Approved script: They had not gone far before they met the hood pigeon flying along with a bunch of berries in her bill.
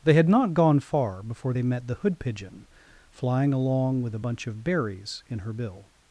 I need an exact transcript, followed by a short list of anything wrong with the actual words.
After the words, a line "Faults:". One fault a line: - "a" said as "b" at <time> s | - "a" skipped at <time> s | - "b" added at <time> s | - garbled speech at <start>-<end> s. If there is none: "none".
They had not gone far before they met the hood pigeon flying along with a bunch of berries in her bill.
Faults:
none